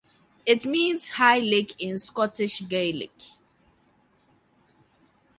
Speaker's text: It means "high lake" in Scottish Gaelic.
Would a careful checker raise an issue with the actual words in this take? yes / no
no